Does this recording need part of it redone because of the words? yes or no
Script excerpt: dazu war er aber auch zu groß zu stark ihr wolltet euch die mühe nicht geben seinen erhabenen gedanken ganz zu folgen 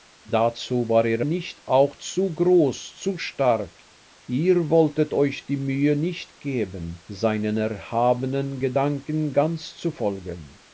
yes